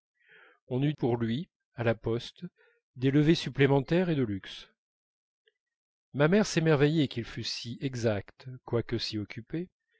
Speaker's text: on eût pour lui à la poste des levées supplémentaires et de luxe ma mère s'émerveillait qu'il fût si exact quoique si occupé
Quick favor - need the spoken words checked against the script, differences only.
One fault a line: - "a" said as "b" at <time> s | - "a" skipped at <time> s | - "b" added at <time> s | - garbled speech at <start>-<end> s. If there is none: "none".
none